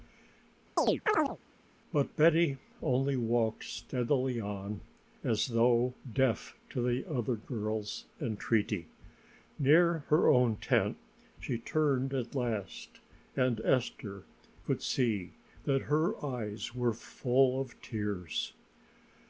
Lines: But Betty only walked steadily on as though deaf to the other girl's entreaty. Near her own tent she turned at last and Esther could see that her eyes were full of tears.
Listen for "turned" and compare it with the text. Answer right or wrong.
right